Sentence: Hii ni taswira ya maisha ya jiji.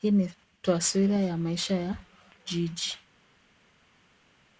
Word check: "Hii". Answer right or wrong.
right